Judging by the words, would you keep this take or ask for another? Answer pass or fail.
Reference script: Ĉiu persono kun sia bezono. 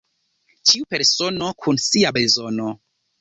pass